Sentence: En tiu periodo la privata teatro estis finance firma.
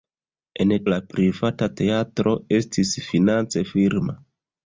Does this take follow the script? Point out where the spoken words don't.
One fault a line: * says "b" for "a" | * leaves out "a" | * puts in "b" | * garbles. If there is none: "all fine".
* leaves out "tiu periodo"